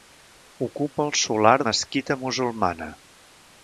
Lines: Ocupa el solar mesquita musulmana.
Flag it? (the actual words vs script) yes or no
no